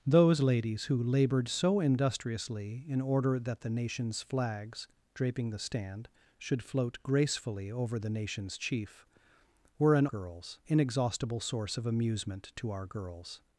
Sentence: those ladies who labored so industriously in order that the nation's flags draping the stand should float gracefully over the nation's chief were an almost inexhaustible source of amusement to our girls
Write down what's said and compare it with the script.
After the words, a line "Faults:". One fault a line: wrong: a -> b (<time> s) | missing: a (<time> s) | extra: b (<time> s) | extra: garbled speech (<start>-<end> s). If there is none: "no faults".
those ladies who labored so industriously in order that the nation's flags draping the stand should float gracefully over the nation's chief were an girls inexhaustible source of amusement to our girls
Faults:
wrong: almost -> girls (10.1 s)